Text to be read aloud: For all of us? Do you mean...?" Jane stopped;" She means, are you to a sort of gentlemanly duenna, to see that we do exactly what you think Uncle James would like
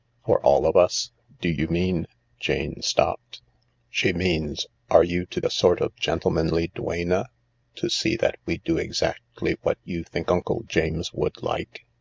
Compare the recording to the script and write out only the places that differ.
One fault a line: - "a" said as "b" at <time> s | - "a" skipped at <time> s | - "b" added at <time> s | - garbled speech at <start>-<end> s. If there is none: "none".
none